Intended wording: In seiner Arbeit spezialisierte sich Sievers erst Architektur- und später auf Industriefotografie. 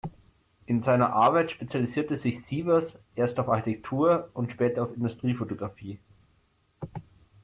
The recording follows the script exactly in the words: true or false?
false